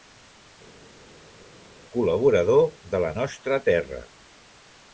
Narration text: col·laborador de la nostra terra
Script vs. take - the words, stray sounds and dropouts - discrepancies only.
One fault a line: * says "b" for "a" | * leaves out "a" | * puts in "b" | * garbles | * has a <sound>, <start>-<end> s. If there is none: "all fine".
all fine